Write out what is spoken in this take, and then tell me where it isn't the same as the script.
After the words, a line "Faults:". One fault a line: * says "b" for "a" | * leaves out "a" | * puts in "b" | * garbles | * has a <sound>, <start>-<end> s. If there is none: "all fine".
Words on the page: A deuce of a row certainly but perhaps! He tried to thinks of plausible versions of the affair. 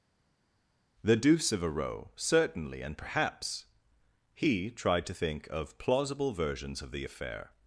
The deuce of a row certainly and perhaps! He tried to think of plausible versions of the affair.
Faults:
* says "The" for "A"
* says "and" for "but"
* says "think" for "thinks"